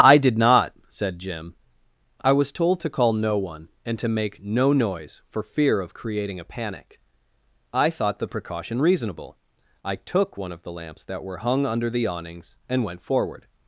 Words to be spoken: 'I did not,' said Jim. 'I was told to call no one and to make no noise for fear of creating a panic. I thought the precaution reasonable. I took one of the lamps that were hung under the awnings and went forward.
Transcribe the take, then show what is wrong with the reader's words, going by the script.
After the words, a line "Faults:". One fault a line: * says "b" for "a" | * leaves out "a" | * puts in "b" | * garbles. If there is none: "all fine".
'I did not,' said Jim. 'I was told to call no one and to make no noise for fear of creating a panic. I thought the precaution reasonable. I took one of the lamps that were hung under the awnings and went forward.
Faults:
all fine